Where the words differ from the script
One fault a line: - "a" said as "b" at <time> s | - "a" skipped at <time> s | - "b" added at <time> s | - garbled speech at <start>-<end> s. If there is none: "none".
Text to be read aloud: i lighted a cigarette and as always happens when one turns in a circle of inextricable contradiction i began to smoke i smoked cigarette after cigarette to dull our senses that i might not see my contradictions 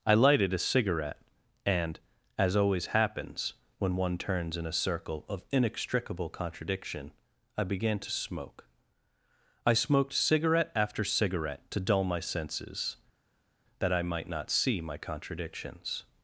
- "our" said as "my" at 12.0 s